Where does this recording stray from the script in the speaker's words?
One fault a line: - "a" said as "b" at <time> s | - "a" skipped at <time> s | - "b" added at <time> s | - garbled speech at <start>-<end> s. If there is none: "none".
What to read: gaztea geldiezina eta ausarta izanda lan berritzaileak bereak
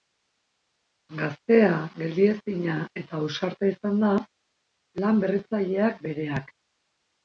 none